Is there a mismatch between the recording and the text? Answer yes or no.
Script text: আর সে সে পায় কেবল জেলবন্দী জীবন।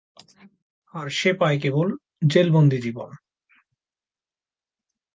yes